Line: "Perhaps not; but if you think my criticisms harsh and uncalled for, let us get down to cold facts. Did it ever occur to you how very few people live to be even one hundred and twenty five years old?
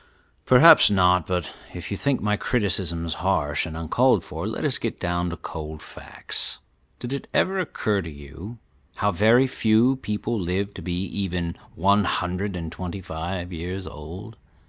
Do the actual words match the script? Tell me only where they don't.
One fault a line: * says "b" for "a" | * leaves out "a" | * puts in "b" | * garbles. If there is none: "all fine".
all fine